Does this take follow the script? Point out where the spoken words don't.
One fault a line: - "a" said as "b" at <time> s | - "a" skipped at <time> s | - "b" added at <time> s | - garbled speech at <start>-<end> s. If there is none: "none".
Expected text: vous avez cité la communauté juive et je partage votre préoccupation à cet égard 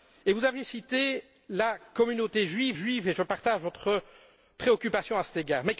- "juive" added at 2.7 s